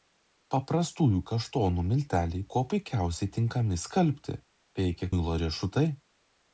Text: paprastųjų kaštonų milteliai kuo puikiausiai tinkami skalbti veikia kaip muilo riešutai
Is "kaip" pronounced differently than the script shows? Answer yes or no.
yes